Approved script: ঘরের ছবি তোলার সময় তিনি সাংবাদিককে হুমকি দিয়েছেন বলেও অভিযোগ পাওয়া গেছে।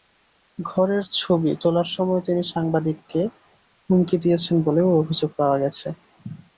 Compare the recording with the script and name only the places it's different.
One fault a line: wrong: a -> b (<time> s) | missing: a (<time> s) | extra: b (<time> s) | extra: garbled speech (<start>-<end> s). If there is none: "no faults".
no faults